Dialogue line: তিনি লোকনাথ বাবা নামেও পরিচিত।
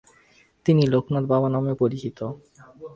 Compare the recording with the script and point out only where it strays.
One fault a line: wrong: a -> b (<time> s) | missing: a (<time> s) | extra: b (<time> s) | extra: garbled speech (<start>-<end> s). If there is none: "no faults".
no faults